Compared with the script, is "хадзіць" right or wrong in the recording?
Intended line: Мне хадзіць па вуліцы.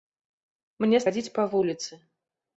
right